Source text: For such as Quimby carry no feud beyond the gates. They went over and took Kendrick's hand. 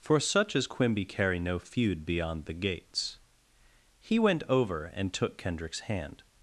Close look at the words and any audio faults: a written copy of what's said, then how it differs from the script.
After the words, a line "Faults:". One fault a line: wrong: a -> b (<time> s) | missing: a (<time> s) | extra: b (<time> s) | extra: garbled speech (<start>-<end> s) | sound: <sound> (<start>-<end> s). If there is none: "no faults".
For such as Quimby carry no feud beyond the gates. He went over and took Kendrick's hand.
Faults:
wrong: They -> He (4.0 s)